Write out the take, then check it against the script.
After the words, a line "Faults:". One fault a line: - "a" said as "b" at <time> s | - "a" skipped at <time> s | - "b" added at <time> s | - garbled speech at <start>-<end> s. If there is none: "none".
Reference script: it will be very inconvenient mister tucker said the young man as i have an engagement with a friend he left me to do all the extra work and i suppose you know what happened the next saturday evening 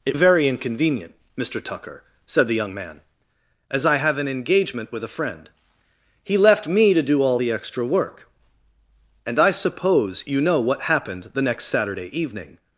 it very inconvenient mister tucker said the young man as i have an engagement with a friend he left me to do all the extra work and i suppose you know what happened the next saturday evening
Faults:
- "will be" skipped at 0.2 s